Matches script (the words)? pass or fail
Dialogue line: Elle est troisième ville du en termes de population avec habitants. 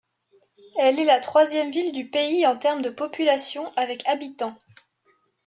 fail